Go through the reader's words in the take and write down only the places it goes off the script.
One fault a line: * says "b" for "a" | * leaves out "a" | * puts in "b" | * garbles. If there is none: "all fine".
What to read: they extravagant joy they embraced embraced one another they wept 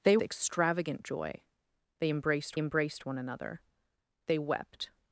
all fine